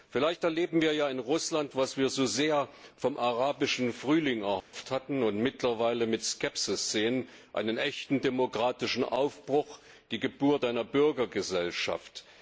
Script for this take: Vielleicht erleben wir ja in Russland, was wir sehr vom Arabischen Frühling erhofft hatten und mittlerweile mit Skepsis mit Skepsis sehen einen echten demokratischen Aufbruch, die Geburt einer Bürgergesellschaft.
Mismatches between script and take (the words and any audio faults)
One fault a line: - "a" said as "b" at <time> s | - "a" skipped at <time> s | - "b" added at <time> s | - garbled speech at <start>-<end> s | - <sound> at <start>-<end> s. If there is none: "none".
- "so" added at 2.1 s
- dropout at 4.6-4.7 s
- "mit Skepsis" skipped at 6.9 s